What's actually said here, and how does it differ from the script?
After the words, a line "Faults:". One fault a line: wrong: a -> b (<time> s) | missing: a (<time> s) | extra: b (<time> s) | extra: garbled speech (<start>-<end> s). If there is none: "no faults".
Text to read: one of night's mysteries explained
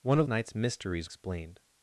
one of night's mysteries explained
Faults:
no faults